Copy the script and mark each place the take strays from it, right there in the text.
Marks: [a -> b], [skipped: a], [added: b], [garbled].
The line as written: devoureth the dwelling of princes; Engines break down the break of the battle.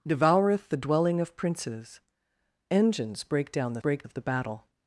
devoureth the dwelling of princes; Engines break down the break of the battle.